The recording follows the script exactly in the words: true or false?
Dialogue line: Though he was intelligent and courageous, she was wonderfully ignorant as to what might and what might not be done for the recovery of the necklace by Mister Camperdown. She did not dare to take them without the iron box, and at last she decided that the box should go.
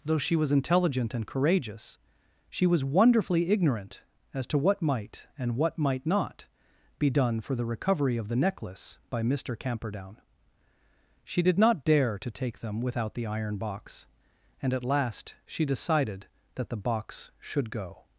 false